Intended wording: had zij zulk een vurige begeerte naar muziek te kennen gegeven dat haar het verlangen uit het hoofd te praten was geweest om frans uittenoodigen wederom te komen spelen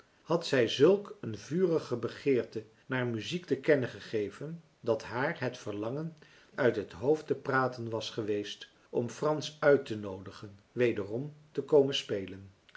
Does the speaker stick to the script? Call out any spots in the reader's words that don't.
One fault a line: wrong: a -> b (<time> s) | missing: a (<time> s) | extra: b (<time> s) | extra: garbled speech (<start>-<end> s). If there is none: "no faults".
no faults